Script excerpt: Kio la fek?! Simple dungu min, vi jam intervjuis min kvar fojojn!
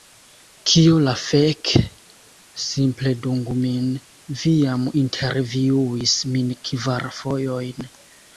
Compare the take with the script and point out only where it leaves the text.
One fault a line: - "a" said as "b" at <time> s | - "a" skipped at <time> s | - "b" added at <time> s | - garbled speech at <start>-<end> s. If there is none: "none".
none